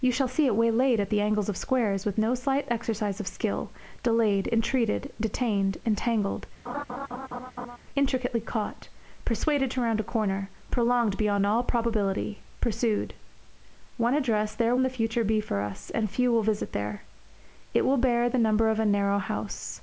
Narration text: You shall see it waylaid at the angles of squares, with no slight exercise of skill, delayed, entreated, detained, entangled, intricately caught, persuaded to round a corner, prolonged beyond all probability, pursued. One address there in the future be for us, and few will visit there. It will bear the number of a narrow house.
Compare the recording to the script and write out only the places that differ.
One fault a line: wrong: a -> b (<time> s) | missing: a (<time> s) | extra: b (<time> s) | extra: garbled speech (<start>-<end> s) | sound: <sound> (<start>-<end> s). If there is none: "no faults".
sound: laugh (6.7-7.8 s)